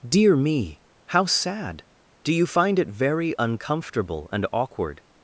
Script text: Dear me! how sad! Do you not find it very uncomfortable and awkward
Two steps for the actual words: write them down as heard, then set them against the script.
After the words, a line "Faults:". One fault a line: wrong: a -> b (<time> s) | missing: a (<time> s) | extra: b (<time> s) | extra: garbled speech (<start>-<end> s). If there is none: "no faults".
Dear me! how sad! Do you find it very uncomfortable and awkward
Faults:
missing: not (2.5 s)